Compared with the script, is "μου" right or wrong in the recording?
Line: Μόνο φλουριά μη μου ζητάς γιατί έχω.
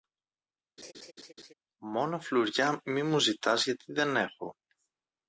right